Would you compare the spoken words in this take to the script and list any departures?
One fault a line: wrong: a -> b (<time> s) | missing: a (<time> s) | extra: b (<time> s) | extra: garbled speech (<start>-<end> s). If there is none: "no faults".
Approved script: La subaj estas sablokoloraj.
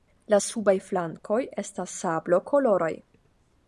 extra: flankoj (0.9 s)